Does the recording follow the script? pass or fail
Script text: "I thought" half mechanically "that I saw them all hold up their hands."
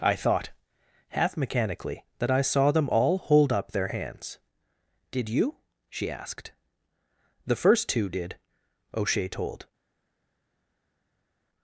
fail